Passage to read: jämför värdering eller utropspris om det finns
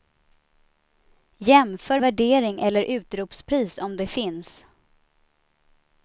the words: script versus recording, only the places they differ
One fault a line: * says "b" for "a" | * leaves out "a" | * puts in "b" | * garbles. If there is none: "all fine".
all fine